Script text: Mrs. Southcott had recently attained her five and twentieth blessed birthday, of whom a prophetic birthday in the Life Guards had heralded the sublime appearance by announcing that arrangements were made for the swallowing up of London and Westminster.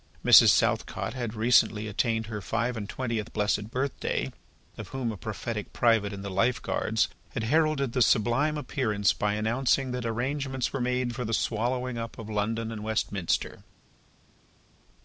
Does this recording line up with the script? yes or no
no